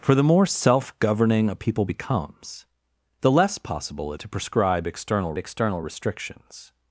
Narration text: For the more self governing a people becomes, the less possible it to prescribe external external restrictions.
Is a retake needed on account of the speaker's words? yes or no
no